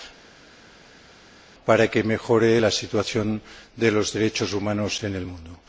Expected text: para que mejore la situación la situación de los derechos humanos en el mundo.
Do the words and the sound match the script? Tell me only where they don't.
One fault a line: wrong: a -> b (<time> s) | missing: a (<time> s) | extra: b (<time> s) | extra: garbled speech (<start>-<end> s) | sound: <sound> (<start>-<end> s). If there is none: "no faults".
missing: la situación (3.4 s)